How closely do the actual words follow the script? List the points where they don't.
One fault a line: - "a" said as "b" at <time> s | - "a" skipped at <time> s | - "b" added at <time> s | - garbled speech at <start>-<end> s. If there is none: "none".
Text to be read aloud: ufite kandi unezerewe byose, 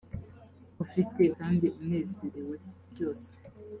none